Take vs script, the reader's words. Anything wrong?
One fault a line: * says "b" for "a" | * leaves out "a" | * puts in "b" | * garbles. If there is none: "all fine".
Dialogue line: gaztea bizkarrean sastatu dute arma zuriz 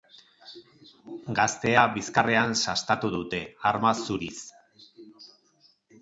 all fine